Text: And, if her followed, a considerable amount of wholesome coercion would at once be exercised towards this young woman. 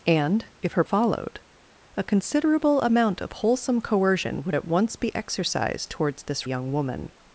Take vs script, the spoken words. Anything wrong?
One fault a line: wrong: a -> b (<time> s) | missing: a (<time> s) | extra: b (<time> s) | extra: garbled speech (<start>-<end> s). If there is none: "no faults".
no faults